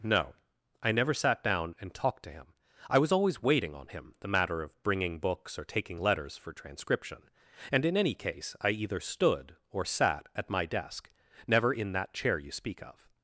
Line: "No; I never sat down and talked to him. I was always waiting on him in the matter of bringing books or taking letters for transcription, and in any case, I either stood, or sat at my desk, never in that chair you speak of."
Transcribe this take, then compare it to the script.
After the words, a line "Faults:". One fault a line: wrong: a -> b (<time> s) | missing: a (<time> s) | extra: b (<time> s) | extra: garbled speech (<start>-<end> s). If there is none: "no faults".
"No; I never sat down and talked to him. I was always waiting on him the matter of bringing books or taking letters for transcription, and in any case, I either stood, or sat at my desk, never in that chair you speak of."
Faults:
missing: in (4.2 s)